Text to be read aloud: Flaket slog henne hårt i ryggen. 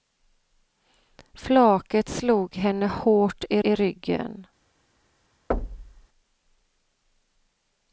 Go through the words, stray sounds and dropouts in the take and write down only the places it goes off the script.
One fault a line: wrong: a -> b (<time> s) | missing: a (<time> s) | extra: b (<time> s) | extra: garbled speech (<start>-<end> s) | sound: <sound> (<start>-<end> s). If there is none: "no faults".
extra: i (3.6 s)
sound: thud (5.5-6.1 s)